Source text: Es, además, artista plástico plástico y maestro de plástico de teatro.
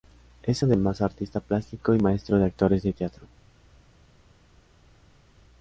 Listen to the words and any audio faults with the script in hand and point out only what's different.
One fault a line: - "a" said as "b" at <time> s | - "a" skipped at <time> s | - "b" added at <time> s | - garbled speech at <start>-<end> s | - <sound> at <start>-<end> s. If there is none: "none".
- "plástico" skipped at 1.9 s
- "plástico" said as "actores" at 2.4 s